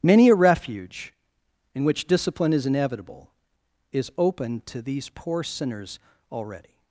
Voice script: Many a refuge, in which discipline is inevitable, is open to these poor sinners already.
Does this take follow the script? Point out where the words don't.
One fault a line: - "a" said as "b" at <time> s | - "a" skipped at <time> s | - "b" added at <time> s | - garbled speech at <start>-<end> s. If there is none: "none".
none